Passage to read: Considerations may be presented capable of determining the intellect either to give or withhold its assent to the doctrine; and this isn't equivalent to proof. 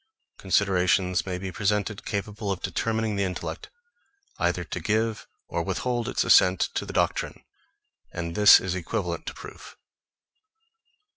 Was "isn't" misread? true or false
true